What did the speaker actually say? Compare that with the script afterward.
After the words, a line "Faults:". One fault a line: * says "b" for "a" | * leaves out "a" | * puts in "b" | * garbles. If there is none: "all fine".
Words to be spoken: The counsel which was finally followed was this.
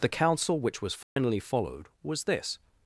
The counsel which was finally followed was this.
Faults:
all fine